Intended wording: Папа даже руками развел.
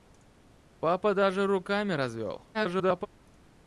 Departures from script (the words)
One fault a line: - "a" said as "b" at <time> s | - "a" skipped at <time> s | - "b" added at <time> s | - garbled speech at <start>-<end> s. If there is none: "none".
- garbled speech at 2.5-3.1 s